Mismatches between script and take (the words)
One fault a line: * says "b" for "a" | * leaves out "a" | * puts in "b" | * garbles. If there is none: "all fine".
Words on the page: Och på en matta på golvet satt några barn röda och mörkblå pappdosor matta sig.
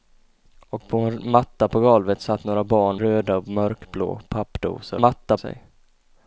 all fine